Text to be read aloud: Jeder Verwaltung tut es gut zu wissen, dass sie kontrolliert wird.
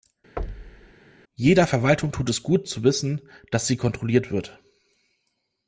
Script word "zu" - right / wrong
right